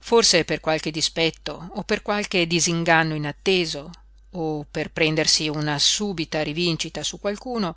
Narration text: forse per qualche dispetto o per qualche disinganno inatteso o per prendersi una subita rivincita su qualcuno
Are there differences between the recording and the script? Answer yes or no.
no